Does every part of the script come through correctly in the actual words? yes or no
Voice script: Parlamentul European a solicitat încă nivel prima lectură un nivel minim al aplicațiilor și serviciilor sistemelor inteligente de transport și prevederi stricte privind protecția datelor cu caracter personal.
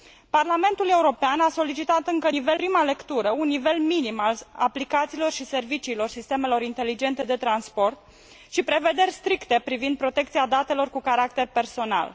yes